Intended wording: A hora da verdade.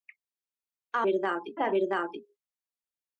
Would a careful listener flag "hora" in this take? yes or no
yes